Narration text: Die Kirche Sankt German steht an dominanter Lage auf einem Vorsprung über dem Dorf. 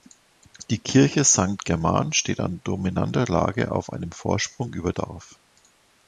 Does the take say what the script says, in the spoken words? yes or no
no